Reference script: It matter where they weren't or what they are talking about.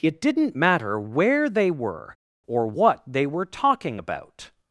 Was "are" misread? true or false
true